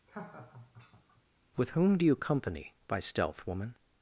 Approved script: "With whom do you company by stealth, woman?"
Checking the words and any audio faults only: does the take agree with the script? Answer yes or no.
no